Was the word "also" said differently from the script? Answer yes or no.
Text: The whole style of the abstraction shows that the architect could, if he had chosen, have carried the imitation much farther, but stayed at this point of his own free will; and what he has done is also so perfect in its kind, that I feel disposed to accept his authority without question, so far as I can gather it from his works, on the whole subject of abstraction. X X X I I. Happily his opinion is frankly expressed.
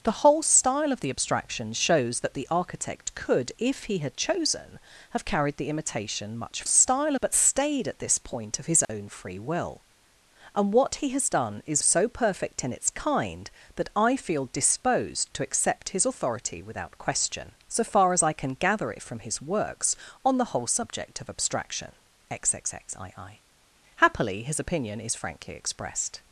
yes